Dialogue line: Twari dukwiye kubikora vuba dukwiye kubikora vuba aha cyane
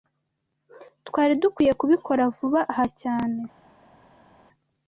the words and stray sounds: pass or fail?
fail